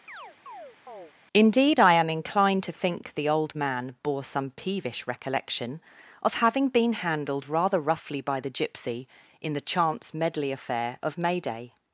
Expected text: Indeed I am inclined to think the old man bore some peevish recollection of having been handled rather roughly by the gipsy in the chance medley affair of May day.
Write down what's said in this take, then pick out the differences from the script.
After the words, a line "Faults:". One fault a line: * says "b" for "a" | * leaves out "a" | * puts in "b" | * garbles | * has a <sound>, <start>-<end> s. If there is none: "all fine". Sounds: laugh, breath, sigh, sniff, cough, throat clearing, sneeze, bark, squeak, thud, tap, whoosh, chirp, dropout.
Indeed I am inclined to think the old man bore some peevish recollection of having been handled rather roughly by the gipsy in the chance medley affair of May day.
Faults:
* has a chirp, 0.1-1.1 s